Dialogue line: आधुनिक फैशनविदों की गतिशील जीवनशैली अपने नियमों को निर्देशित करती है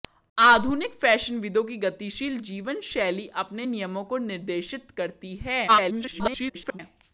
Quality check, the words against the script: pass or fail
fail